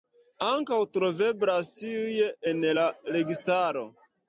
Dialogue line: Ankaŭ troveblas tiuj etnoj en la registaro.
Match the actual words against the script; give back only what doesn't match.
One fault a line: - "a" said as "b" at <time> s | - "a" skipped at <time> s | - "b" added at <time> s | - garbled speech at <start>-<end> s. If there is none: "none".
- "etnoj" skipped at 2.2 s